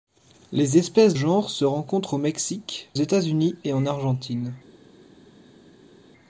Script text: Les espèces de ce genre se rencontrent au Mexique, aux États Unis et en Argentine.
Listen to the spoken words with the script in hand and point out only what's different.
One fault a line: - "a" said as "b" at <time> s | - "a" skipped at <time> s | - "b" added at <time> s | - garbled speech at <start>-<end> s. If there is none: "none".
- "de ce" skipped at 1.1 s
- "aux" skipped at 2.9 s